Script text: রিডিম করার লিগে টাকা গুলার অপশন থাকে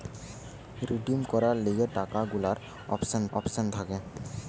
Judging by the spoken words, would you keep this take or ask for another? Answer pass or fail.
fail